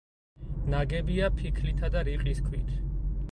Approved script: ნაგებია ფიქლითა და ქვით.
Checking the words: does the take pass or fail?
fail